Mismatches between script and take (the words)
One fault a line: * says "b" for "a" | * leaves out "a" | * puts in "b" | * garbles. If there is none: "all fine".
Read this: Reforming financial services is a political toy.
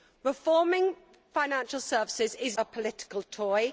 all fine